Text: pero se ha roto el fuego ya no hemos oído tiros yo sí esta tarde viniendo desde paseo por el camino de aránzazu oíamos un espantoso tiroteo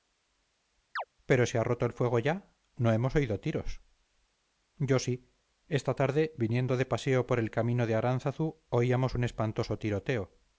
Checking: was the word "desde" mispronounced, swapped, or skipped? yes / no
yes